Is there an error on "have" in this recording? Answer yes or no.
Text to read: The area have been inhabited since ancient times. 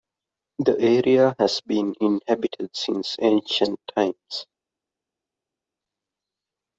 yes